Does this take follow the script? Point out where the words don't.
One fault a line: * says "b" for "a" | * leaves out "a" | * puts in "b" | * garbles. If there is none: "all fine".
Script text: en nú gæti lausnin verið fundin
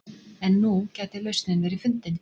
all fine